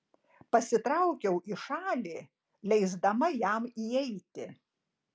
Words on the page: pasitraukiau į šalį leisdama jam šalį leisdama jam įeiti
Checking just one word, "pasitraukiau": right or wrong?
right